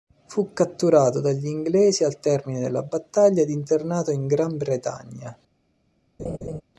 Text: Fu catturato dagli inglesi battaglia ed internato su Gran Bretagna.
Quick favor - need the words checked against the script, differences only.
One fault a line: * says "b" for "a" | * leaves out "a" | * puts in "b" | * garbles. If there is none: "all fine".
* puts in "al termine della"
* says "in" for "su"